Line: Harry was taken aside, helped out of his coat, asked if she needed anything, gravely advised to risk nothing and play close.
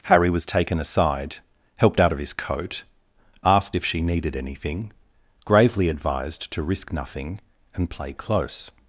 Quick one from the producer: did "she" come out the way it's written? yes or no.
yes